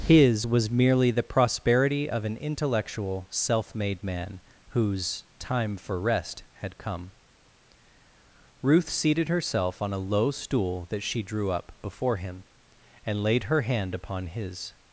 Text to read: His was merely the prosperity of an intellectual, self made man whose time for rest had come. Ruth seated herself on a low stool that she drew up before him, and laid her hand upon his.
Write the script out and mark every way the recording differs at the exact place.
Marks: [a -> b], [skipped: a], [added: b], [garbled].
His was merely the prosperity of an intellectual, self made man whose time for rest had come. Ruth seated herself on a low stool that she drew up before him, and laid her hand upon his.